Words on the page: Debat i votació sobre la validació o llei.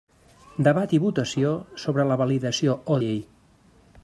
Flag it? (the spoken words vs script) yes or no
no